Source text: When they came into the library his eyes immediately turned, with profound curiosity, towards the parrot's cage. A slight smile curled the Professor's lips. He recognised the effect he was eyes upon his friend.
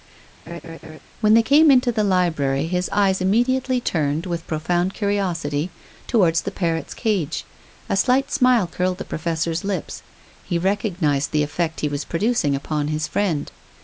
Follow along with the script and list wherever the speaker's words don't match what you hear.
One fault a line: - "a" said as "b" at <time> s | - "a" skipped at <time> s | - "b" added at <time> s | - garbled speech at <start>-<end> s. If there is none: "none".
- "eyes" said as "producing" at 12.0 s